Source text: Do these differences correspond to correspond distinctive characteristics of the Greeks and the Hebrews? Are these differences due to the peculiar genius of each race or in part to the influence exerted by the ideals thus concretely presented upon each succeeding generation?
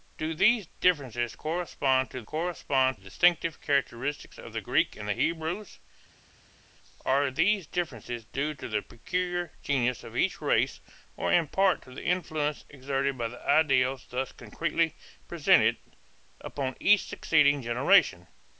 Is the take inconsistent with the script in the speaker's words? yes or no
no